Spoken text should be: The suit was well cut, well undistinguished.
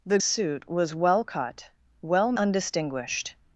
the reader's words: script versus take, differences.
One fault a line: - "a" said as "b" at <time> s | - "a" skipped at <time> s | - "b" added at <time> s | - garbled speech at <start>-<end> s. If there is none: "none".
none